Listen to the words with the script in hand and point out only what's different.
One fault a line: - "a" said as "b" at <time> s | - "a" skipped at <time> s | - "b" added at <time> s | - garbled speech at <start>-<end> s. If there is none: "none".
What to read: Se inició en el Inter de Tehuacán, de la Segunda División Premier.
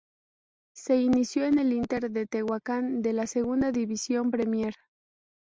none